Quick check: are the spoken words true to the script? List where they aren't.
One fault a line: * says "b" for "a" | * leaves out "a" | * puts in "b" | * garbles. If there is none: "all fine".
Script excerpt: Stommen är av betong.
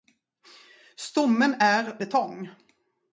* leaves out "av"